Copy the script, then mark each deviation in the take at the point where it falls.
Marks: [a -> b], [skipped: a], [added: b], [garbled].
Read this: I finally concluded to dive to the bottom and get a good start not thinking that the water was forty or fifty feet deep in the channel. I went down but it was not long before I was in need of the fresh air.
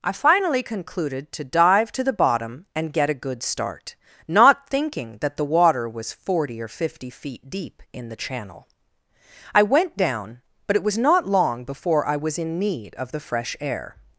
I finally concluded to dive to the bottom and get a good start not thinking that the water was forty or fifty feet deep in the channel. I went down but it was not long before I was in need of the fresh air.